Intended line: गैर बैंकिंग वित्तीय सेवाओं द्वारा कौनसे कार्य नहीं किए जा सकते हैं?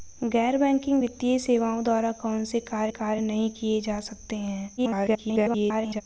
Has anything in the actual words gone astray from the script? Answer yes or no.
yes